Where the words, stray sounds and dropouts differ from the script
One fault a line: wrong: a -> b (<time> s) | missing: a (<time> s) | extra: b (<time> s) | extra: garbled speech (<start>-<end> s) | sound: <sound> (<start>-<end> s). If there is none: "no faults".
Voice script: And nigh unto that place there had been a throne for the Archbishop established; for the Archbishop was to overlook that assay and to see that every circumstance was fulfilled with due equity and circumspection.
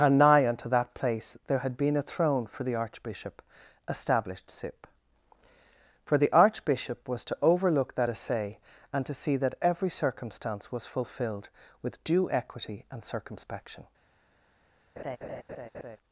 extra: sip (4.5 s)
sound: laugh (15.0-16.0 s)